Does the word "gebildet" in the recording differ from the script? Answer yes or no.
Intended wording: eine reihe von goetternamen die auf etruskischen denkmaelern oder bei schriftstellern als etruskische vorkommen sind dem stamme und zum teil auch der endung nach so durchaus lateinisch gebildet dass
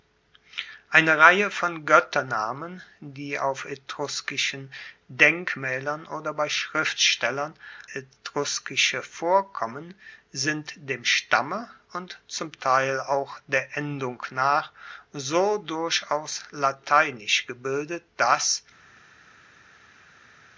no